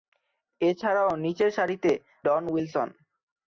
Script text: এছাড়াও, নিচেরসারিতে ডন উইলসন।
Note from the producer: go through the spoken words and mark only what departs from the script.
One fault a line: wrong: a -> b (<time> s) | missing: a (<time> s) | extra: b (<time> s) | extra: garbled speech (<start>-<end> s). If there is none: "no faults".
no faults